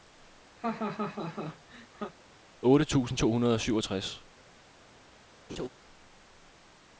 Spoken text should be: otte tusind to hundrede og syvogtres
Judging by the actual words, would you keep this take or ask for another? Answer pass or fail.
pass